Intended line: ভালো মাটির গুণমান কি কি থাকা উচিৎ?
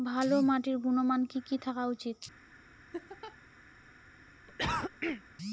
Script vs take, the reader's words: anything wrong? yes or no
no